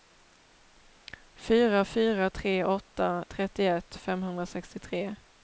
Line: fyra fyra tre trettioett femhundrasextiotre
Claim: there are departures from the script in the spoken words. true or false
true